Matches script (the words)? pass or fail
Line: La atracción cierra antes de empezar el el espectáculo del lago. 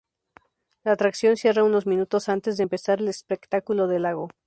fail